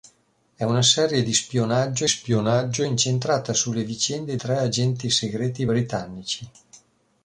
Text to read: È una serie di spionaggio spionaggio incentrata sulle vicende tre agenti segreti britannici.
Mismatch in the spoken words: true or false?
false